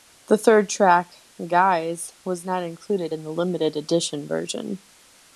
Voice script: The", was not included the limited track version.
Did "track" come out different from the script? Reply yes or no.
yes